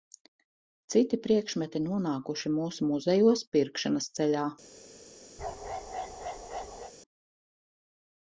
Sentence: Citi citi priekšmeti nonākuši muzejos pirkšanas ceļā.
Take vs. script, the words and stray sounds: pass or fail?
fail